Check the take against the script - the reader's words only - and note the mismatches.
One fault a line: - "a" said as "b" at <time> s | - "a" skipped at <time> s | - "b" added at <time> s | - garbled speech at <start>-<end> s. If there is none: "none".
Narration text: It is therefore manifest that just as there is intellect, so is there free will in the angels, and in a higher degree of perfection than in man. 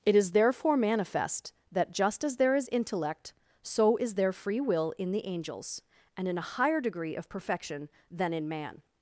none